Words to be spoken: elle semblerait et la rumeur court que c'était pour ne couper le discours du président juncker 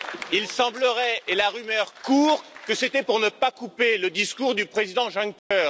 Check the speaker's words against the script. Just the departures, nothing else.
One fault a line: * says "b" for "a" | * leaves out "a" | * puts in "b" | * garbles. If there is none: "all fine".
* says "il" for "elle"
* puts in "pas"